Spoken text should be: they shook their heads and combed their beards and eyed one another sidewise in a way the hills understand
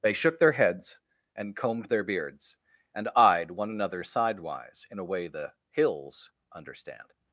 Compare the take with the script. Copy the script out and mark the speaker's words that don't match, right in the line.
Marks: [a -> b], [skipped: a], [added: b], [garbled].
they shook their heads and combed their beards and eyed one another sidewise in a way the hills understand